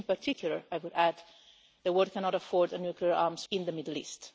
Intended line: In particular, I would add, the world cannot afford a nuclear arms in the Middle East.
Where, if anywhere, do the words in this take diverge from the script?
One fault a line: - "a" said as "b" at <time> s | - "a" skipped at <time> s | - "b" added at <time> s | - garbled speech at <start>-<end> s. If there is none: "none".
none